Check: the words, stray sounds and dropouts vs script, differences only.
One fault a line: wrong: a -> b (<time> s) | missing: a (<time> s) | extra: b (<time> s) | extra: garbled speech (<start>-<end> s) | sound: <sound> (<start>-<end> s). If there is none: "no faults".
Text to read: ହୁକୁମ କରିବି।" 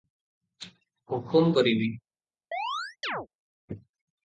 sound: chirp (2.5-3.3 s)